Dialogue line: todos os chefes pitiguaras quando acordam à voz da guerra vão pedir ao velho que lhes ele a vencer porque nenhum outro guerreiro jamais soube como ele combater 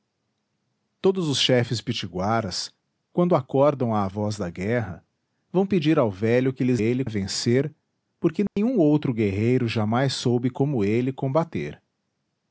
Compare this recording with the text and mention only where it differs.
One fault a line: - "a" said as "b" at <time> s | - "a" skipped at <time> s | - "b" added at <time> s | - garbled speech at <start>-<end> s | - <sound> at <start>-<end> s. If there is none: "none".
- dropout at 8.5-8.6 s